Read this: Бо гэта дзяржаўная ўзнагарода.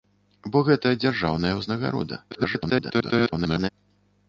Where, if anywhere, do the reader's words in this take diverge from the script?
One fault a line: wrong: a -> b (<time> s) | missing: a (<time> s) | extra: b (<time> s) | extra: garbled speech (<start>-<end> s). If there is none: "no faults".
extra: garbled speech (2.3-3.7 s)